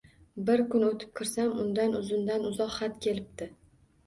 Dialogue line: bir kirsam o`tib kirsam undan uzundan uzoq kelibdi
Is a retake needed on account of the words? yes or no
yes